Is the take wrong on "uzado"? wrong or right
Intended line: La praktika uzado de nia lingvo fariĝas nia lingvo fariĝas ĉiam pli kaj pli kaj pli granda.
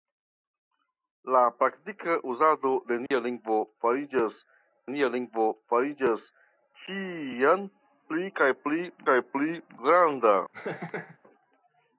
right